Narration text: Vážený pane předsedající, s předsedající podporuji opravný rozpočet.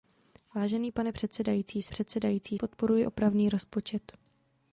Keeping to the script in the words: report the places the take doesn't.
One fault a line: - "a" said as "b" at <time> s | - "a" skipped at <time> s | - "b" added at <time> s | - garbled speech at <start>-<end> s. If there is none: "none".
none